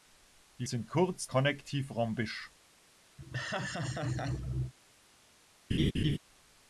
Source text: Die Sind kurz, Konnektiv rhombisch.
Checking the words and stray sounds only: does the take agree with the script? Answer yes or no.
no